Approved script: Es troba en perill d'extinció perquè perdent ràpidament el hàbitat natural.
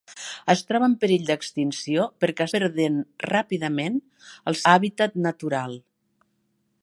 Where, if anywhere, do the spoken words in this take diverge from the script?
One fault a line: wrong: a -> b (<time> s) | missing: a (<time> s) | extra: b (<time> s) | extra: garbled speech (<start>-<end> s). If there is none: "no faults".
no faults